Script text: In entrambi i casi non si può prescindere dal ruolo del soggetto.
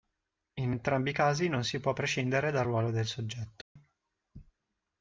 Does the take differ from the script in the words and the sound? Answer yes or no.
yes